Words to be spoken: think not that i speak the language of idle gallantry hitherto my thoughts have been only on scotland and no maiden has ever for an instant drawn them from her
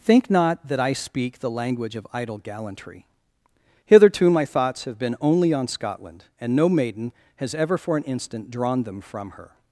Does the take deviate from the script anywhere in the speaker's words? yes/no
no